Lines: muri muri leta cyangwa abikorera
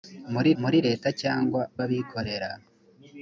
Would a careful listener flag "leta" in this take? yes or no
no